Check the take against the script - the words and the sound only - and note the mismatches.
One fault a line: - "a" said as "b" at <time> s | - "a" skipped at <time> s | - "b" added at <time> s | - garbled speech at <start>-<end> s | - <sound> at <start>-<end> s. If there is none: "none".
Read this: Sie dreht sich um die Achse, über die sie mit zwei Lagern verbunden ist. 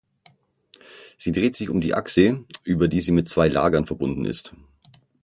none